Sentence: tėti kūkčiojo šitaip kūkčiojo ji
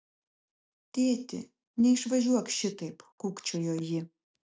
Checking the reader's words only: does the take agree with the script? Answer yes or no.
no